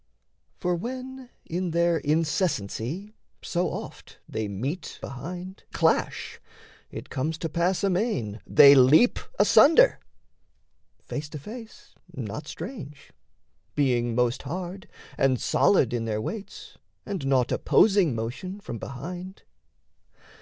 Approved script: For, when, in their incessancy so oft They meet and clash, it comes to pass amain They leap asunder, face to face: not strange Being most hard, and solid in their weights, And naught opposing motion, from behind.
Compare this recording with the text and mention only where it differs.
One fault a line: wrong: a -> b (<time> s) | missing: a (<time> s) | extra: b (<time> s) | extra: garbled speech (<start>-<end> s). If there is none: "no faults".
wrong: and -> behind (5.0 s)